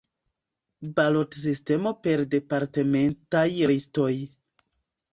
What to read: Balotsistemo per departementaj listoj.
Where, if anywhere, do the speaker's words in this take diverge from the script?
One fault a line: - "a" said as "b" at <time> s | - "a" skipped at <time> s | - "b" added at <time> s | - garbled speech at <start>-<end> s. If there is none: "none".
none